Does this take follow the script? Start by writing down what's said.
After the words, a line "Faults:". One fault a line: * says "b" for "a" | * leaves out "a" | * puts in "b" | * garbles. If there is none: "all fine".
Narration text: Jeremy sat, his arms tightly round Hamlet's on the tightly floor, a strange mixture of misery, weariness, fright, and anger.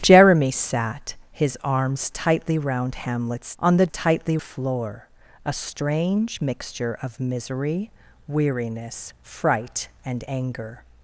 Jeremy sat, his arms tightly round Hamlet's on the tightly floor, a strange mixture of misery, weariness, fright, and anger.
Faults:
all fine